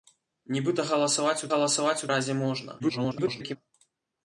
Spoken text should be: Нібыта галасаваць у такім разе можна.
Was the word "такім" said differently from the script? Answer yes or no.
yes